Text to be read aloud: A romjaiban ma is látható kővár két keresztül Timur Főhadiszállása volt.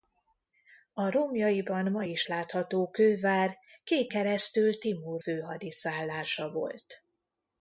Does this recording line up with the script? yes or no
yes